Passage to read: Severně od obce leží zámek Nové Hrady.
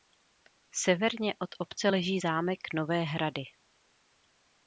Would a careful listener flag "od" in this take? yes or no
no